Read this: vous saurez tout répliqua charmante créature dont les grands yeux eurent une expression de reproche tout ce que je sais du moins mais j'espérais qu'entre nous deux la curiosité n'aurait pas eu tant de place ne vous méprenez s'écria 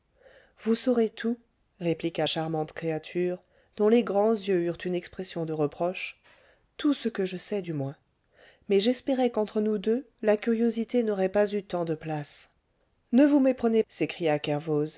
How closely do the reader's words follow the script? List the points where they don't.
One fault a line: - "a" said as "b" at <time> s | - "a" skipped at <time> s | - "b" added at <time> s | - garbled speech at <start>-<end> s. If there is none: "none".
none